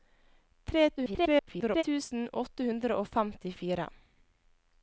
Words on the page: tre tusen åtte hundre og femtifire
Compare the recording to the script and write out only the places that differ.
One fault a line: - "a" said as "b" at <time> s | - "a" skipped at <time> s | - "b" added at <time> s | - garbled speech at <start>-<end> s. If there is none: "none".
- garbled speech at 1.0-1.8 s